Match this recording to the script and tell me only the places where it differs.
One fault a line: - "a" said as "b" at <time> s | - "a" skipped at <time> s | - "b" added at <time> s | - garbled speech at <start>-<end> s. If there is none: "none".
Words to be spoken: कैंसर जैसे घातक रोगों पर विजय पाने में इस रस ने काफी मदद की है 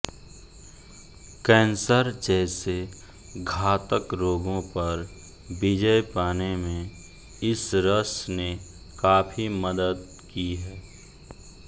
none